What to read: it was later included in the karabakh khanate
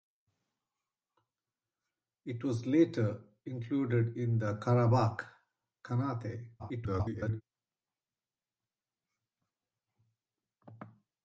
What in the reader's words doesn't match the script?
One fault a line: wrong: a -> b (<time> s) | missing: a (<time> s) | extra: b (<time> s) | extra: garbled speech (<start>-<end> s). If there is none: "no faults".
extra: garbled speech (6.6-7.4 s)